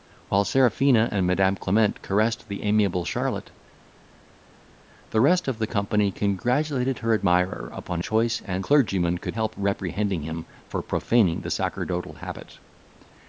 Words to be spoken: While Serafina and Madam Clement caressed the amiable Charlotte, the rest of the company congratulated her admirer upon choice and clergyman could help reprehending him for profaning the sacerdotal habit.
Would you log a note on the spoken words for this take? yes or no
no